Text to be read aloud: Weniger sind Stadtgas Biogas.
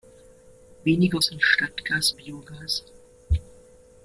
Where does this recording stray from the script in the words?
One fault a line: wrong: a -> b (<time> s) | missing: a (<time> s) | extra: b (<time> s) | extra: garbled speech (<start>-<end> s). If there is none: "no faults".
no faults